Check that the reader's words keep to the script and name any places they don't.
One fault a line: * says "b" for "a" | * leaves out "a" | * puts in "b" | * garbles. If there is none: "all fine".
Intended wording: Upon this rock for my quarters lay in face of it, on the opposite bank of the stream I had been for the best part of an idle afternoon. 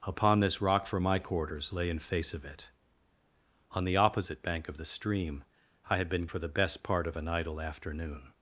all fine